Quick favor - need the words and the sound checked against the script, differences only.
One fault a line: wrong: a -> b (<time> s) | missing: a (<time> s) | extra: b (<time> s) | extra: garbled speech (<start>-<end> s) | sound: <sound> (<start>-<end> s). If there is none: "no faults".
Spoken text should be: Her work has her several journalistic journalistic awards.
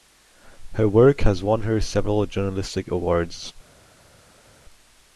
extra: won (1.4 s)
missing: journalistic (2.9 s)